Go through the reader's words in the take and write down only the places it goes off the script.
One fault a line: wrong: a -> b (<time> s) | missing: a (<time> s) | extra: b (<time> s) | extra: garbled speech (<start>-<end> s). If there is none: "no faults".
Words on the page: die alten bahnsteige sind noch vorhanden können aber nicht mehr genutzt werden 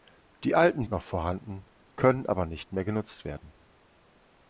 missing: bahnsteige sind (0.9 s)